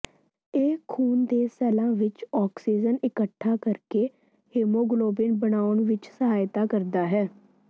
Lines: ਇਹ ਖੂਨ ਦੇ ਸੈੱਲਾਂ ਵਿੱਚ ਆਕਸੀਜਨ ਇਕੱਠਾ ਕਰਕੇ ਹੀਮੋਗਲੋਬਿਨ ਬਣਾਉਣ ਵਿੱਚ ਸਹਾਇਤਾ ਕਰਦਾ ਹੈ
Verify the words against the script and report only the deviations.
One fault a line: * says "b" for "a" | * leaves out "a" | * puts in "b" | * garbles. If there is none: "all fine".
all fine